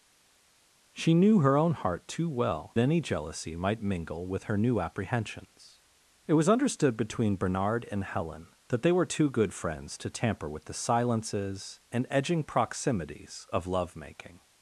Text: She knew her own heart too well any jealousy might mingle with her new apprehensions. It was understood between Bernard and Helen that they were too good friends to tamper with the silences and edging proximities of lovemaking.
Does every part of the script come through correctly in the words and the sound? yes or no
yes